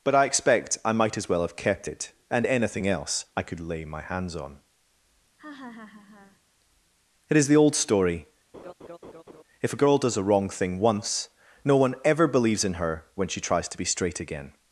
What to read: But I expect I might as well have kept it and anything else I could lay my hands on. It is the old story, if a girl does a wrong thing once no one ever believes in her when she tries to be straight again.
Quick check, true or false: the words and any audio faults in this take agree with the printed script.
false